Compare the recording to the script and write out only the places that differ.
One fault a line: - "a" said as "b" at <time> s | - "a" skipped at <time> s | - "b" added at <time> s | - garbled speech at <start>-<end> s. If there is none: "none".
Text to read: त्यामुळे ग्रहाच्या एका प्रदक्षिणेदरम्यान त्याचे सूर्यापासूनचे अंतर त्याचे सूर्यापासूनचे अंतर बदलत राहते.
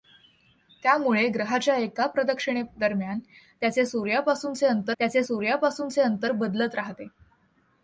none